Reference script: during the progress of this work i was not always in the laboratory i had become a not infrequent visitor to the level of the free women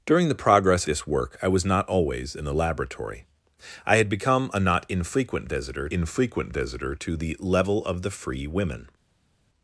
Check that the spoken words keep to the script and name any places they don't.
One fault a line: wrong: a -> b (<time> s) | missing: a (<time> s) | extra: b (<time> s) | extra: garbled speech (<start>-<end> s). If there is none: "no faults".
missing: of (0.9 s)
extra: infrequent visitor (5.9 s)